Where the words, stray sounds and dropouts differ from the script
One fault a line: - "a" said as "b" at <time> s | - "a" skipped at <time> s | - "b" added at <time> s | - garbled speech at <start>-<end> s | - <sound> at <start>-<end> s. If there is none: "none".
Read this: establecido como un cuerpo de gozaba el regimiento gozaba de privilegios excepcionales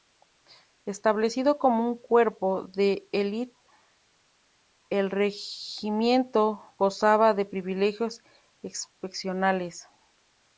- "gozaba" said as "elite" at 3.1 s